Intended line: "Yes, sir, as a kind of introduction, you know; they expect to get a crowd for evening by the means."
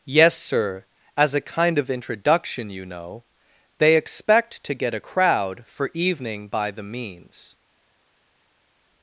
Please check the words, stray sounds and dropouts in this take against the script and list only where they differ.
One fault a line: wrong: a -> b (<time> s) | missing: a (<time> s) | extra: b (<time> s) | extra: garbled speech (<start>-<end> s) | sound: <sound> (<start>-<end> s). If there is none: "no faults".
no faults